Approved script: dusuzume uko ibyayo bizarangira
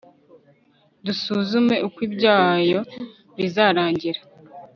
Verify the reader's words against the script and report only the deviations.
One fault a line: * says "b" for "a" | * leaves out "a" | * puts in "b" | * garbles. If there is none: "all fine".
all fine